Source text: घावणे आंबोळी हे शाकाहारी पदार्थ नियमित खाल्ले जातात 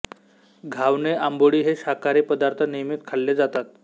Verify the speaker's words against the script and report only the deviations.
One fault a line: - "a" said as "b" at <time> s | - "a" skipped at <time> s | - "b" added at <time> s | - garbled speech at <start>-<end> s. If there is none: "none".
none